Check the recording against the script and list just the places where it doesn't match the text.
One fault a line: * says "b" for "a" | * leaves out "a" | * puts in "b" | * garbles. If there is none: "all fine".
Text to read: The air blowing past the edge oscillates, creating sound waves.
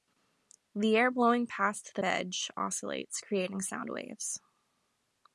all fine